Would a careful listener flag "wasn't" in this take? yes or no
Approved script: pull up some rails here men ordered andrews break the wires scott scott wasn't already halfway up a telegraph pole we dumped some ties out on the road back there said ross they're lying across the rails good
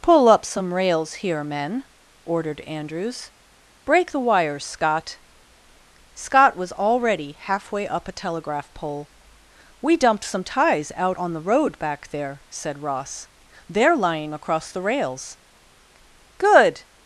yes